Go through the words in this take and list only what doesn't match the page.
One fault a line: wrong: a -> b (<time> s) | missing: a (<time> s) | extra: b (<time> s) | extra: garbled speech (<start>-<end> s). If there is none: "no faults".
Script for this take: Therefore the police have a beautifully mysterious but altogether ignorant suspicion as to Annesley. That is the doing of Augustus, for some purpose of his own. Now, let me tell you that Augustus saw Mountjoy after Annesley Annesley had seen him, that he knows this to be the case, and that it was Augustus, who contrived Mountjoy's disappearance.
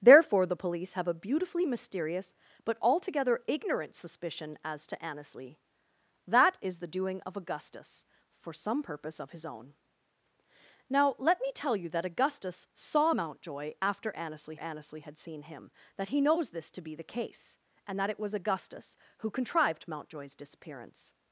no faults